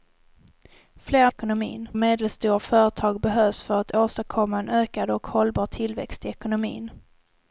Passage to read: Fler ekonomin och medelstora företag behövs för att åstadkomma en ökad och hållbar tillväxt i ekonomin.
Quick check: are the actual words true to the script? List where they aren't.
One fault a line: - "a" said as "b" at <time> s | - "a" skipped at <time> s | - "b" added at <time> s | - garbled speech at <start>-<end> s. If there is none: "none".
none